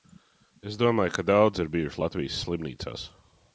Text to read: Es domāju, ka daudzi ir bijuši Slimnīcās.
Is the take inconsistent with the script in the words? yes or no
yes